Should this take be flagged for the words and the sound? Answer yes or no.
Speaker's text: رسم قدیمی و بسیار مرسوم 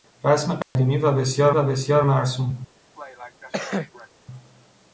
yes